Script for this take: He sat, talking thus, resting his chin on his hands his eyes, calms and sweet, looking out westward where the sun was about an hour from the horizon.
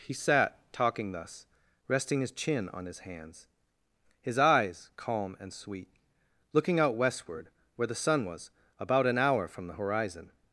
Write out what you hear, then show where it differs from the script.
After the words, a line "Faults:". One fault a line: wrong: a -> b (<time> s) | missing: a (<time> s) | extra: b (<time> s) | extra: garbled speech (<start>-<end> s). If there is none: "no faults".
He sat, talking thus, resting his chin on his hands his eyes, calm and sweet, looking out westward where the sun was about an hour from the horizon.
Faults:
wrong: calms -> calm (5.0 s)